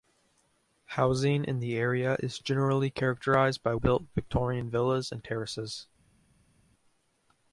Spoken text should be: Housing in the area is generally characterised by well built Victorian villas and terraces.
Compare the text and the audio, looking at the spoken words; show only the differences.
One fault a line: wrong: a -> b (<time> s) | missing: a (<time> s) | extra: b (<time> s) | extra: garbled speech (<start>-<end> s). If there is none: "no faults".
missing: well (3.8 s)